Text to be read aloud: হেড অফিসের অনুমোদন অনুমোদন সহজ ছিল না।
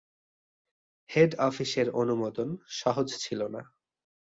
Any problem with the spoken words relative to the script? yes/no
yes